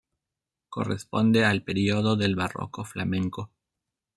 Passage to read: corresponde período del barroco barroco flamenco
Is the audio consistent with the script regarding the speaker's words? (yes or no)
no